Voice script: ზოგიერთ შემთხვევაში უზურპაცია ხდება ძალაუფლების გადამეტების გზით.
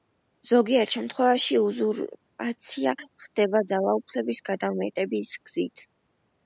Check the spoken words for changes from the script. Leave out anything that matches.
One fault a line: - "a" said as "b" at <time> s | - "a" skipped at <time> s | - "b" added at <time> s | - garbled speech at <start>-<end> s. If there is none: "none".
none